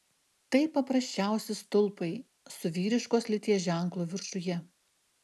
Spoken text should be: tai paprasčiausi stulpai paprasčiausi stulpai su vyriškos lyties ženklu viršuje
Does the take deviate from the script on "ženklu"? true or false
false